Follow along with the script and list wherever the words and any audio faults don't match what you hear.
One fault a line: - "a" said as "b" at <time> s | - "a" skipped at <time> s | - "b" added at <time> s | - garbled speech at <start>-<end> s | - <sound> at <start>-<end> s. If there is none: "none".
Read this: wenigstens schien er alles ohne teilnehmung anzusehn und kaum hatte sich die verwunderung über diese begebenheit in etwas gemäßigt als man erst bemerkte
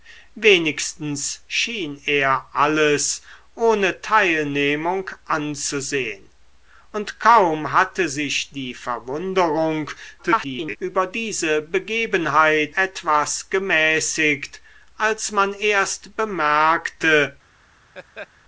- garbled speech at 10.2-10.8 s
- "in" skipped at 12.8 s
- laugh at 17.9-18.3 s